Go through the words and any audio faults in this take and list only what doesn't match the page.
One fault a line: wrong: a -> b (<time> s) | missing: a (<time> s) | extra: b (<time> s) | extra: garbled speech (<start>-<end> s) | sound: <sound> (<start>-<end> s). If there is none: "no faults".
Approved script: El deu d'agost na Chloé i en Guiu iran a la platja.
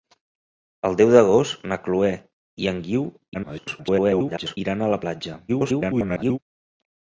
extra: garbled speech (3.3-4.6 s)
extra: garbled speech (5.5-6.4 s)